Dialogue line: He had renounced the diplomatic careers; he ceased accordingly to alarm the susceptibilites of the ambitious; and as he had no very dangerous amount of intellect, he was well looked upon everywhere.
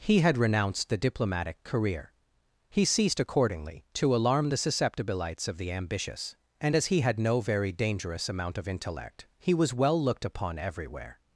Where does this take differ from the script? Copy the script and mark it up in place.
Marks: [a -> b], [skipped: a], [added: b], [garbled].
He had renounced the diplomatic [careers; -> career] he ceased accordingly to alarm the susceptibilites of the ambitious; and as he had no very dangerous amount of intellect, he was well looked upon everywhere.